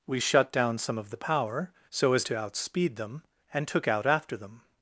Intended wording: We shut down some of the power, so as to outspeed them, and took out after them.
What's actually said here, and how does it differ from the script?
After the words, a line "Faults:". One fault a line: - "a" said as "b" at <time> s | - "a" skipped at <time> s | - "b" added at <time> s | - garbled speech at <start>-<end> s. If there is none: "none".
We shut down some of the power, so as to outspeed them, and took out after them.
Faults:
none